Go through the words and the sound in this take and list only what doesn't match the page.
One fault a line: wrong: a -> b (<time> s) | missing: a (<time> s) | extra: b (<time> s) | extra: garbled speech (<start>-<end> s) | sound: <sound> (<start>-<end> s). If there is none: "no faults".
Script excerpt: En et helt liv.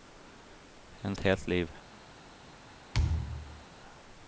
sound: thud (2.9-3.6 s)